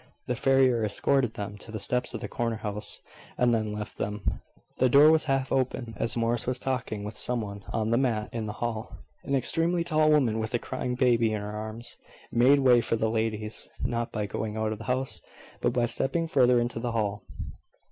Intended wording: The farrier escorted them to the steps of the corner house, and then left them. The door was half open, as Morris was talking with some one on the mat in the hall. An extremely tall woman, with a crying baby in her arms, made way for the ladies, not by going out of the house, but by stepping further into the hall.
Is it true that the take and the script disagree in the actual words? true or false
false